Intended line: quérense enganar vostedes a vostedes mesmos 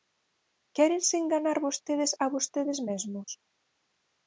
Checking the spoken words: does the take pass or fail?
pass